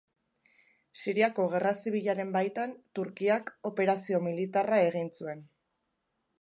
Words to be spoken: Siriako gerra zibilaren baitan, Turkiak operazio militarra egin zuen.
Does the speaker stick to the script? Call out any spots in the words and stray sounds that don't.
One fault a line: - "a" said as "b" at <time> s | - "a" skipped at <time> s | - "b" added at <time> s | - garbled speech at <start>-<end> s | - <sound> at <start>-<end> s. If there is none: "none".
none